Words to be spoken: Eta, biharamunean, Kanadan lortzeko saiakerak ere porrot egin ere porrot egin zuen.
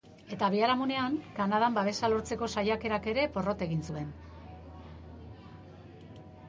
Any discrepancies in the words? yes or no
yes